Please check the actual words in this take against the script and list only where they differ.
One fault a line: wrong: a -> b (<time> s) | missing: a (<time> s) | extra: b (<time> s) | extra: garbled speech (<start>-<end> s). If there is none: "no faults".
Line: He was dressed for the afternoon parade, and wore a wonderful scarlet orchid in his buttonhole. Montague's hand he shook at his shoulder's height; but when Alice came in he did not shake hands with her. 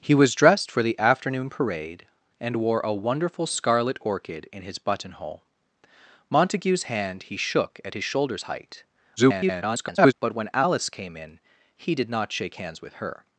extra: garbled speech (9.2-10.1 s)